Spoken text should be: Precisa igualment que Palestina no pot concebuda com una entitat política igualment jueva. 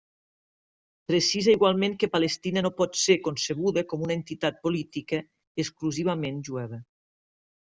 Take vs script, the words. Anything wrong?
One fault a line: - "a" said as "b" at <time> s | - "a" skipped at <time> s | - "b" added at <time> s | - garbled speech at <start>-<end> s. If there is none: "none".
- "ser" added at 3.0 s
- "igualment" said as "exclusivament" at 5.7 s